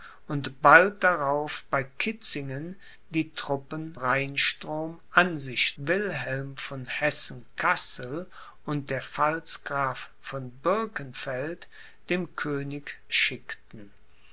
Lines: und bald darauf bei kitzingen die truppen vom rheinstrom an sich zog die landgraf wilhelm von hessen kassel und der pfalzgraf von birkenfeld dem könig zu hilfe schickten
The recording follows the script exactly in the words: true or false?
false